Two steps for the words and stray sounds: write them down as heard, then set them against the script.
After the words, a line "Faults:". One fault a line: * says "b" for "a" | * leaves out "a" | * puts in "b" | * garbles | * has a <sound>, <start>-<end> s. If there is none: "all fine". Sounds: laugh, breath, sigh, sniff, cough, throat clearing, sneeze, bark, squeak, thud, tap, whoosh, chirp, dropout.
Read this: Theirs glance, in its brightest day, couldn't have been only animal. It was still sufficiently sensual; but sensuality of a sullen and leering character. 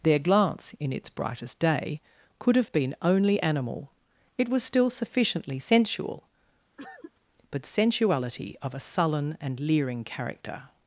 Their glance, in its brightest day, could have been only animal. It was still sufficiently sensual; but sensuality of a sullen and leering character.
Faults:
* says "Their" for "Theirs"
* says "could" for "couldn't"
* has a cough, 6.8-7.1 s